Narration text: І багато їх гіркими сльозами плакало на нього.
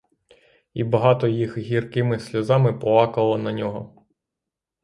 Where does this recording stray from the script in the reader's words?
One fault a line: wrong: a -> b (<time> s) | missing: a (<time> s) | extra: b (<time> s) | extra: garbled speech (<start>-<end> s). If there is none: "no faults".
no faults